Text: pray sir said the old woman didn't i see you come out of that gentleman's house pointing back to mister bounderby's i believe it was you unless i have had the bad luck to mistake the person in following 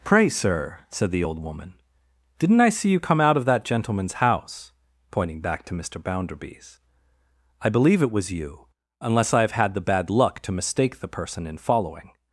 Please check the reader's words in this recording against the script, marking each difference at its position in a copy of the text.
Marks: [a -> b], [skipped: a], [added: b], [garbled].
pray sir said the old woman didn't i see you come out of that gentleman's house pointing back to mister bounderby's i believe it was you unless i have had the bad luck to mistake the person in following